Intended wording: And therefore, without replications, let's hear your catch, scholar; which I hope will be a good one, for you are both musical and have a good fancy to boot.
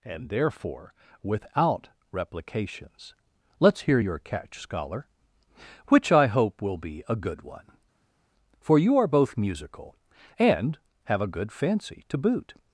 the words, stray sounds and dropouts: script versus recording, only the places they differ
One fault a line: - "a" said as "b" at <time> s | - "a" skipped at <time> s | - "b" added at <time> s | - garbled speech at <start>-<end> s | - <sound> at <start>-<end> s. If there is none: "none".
none